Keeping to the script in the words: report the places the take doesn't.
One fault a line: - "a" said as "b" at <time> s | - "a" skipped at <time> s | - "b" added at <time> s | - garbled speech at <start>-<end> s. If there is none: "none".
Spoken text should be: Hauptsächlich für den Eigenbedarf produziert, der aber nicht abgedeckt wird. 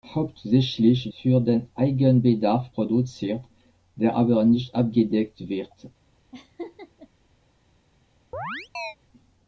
none